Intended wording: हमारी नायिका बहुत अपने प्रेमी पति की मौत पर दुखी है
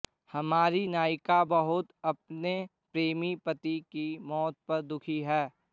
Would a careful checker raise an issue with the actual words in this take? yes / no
no